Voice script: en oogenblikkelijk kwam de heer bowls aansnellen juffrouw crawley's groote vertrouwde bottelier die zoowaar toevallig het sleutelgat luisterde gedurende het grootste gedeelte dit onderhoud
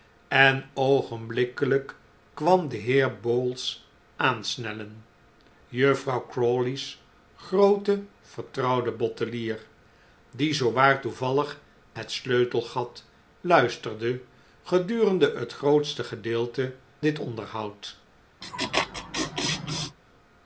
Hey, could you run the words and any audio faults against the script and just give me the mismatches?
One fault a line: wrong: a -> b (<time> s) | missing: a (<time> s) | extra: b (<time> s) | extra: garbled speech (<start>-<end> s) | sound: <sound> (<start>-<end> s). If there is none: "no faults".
sound: laugh (18.4-20.0 s)